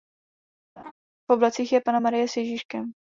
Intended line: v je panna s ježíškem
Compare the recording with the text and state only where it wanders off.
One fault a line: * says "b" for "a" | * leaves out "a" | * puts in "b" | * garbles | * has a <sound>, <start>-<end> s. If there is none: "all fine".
* has a laugh, 0.8-0.9 s
* puts in "oblacích"
* puts in "marie"